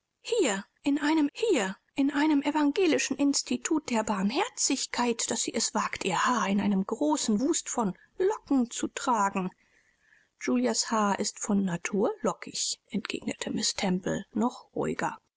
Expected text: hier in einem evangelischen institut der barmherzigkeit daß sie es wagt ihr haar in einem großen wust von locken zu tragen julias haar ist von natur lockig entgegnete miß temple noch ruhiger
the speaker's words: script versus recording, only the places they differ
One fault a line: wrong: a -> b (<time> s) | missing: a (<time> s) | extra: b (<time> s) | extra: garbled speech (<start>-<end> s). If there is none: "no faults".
extra: hier in einem (1.3 s)